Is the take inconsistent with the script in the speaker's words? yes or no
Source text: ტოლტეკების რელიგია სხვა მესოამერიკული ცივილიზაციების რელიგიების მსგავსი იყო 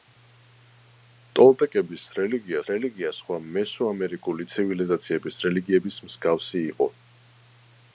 yes